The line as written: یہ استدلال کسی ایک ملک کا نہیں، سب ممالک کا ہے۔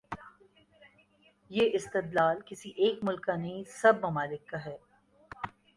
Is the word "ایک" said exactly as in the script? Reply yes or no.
yes